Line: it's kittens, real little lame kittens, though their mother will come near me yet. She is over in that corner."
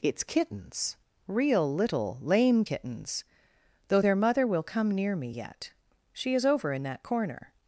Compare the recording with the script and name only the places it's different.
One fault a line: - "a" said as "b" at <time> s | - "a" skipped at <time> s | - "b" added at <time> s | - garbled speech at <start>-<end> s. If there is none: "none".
none